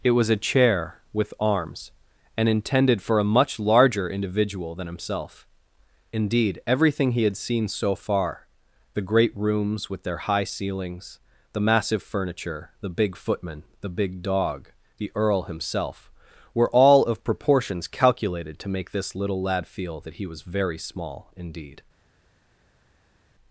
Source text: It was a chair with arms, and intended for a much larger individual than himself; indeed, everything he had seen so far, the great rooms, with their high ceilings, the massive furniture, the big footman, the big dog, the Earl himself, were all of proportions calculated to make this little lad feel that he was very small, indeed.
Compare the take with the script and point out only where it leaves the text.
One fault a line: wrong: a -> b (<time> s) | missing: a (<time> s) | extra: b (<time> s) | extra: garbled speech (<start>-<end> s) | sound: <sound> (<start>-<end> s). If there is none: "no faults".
no faults